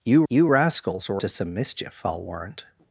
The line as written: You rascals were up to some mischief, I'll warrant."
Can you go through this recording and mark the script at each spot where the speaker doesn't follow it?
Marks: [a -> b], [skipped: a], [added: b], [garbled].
You [added: you] rascals were [skipped: up] to some mischief, I'll warrant."